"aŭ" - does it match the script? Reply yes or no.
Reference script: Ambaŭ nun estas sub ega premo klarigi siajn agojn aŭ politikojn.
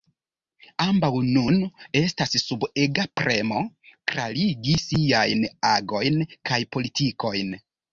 no